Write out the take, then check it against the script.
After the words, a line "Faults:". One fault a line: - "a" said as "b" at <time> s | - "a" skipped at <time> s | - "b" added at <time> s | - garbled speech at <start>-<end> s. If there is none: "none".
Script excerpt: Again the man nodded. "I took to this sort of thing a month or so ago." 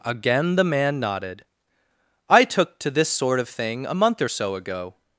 Again the man nodded. "I took to this sort of thing a month or so ago."
Faults:
none